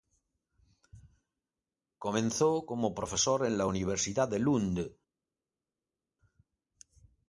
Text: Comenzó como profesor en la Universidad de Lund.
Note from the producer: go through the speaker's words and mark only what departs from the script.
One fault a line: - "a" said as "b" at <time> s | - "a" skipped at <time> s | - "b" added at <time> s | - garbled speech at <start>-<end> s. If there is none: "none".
none